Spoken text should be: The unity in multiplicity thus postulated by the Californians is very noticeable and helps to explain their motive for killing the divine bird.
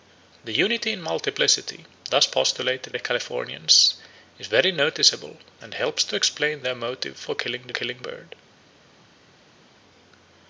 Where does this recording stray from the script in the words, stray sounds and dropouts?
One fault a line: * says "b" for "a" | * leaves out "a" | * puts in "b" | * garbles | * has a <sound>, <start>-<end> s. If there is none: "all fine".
* leaves out "by"
* says "killing" for "divine"